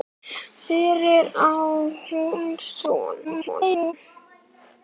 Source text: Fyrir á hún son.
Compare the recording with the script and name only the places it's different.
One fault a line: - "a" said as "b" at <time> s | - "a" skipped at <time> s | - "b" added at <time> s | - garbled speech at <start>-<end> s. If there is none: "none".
- garbled speech at 3.2-3.9 s